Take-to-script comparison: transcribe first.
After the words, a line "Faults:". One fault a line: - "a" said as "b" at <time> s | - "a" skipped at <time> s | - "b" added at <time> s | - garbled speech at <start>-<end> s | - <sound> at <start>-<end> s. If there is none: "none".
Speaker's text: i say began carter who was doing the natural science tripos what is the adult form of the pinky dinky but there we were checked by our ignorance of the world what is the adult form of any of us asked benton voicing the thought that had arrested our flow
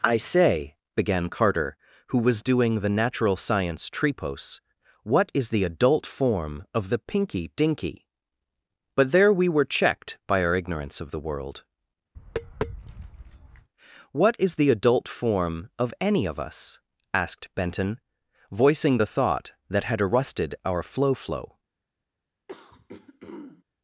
i say began carter who was doing the natural science tripos what is the adult form of the pinky dinky but there we were checked by our ignorance of the world what is the adult form of any of us asked benton voicing the thought that had arrested our flow flow
Faults:
- tap at 12.1-13.7 s
- "flow" added at 21.1 s
- throat clearing at 22.5-23.6 s